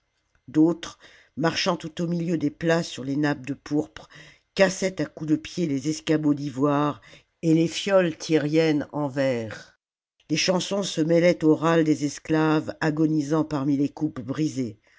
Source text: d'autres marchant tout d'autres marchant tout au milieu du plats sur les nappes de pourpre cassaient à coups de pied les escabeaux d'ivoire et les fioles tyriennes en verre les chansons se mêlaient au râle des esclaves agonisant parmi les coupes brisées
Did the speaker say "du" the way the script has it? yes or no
no